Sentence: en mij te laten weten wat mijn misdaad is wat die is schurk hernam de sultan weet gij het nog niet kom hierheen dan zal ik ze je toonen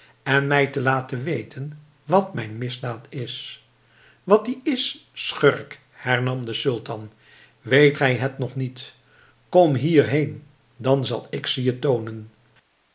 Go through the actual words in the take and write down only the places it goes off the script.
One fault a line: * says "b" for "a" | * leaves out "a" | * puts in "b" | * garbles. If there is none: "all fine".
all fine